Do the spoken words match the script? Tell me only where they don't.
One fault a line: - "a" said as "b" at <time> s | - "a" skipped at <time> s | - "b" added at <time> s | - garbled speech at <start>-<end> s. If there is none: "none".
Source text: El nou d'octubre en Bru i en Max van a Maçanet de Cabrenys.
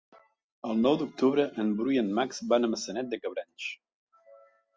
none